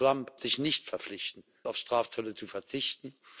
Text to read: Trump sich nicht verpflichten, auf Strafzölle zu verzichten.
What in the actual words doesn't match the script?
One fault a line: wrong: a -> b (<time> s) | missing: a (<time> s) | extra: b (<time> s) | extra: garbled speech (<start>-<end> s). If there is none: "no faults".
no faults